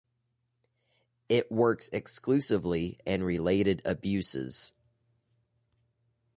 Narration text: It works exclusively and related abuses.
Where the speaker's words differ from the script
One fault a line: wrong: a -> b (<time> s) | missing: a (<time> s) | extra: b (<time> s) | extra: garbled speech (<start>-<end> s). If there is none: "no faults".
no faults